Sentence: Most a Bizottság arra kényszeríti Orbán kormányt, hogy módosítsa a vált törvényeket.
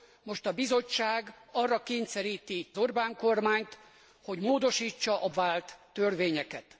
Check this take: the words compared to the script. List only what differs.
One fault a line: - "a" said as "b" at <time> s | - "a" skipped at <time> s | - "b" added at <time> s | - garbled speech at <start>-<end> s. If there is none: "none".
none